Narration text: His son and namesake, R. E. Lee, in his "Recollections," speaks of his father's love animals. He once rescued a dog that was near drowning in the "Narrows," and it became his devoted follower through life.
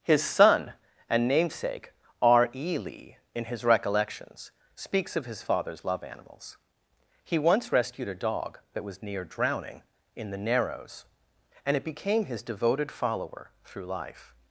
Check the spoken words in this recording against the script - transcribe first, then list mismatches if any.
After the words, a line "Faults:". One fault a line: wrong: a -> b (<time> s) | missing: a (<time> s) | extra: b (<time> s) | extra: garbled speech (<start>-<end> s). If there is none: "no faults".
His son and namesake, R. E. Lee, in his "Recollections," speaks of his father's love animals. He once rescued a dog that was near drowning in the "Narrows," and it became his devoted follower through life.
Faults:
no faults